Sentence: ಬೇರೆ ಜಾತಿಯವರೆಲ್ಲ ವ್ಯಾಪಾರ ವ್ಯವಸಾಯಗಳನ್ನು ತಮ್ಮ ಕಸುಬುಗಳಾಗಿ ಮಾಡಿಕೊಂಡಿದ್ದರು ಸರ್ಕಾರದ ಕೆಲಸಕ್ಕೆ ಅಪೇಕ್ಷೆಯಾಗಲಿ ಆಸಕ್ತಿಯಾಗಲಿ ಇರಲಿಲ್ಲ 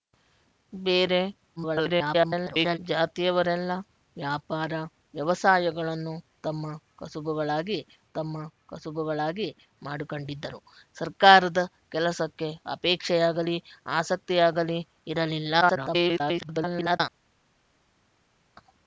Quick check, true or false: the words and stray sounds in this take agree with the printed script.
false